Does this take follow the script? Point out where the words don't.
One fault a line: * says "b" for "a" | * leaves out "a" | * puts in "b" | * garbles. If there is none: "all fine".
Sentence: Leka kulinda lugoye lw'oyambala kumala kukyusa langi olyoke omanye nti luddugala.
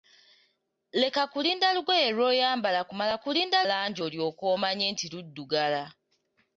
* says "kulinda" for "kukyusa"